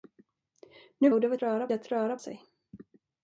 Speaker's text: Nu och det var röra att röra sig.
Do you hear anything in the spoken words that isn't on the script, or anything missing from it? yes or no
no